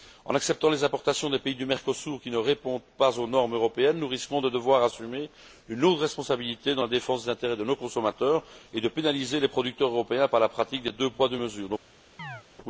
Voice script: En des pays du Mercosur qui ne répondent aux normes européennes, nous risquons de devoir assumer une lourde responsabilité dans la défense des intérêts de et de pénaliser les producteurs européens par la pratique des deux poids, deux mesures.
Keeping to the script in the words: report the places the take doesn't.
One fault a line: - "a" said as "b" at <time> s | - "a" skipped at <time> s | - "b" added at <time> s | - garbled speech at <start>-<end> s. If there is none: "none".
- "acceptant les importations" added at 0.3 s
- "pas" added at 3.0 s
- "nos consommateurs" added at 7.6 s